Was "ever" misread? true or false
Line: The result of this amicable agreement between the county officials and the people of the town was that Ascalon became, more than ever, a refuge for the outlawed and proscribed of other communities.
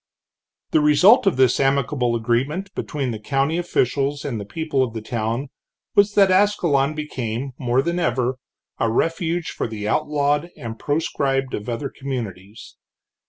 false